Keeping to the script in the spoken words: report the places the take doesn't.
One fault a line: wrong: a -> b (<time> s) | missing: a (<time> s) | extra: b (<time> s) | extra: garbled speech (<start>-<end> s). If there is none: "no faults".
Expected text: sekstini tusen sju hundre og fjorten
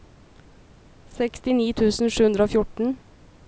no faults